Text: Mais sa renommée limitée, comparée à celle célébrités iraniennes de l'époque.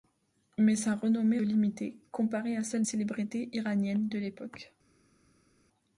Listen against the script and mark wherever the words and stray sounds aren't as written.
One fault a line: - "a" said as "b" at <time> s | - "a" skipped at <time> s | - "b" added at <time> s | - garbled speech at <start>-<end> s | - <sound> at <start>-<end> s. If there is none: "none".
none